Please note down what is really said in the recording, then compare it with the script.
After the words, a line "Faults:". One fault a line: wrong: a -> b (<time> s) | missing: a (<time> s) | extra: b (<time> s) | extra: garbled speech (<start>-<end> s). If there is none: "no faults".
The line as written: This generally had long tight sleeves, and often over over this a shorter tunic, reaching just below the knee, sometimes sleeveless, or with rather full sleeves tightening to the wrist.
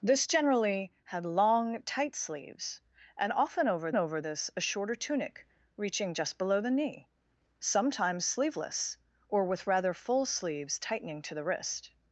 This generally had long tight sleeves, and often over over this a shorter tunic, reaching just below the knee, sometimes sleeveless, or with rather full sleeves tightening to the wrist.
Faults:
no faults